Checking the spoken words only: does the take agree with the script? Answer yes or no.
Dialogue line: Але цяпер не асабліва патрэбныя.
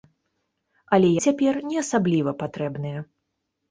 yes